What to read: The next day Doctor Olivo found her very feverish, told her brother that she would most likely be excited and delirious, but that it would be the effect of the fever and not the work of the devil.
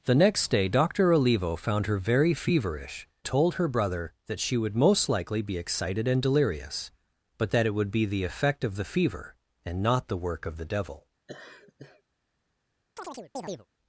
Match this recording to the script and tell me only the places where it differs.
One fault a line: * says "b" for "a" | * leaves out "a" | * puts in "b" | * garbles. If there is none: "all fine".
all fine